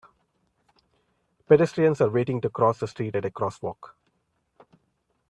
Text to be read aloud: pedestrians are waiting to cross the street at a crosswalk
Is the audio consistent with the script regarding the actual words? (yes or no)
yes